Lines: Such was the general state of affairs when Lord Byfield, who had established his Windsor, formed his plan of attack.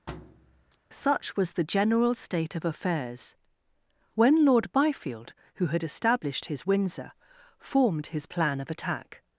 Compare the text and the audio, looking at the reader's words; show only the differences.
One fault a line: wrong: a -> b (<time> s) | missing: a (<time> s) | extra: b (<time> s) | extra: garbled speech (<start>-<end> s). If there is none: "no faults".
no faults